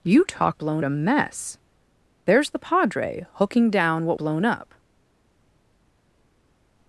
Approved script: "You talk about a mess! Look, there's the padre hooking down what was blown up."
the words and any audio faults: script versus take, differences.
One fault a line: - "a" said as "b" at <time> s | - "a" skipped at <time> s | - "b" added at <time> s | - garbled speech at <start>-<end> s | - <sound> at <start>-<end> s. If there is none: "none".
- "about" said as "blown" at 0.5 s
- "Look" skipped at 1.6 s
- "was" skipped at 4.2 s